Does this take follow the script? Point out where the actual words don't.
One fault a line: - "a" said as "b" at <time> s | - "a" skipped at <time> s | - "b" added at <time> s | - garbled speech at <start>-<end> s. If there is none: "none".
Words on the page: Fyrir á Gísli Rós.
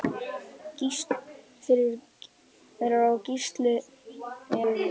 none